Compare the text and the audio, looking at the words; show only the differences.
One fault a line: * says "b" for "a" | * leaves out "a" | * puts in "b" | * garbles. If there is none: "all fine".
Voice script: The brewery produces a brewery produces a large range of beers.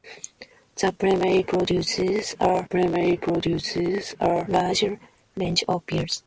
all fine